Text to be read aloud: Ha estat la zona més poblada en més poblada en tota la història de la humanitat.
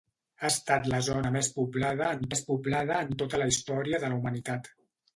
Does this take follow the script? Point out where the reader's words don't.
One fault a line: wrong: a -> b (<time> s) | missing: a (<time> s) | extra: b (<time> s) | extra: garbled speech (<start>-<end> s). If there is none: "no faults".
no faults